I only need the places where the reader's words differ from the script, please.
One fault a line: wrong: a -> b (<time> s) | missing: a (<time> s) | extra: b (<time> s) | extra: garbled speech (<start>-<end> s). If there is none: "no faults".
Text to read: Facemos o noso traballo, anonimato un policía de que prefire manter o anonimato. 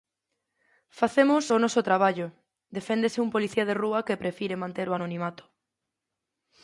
wrong: anonimato -> deféndese (2.8 s)
extra: rúa (3.8 s)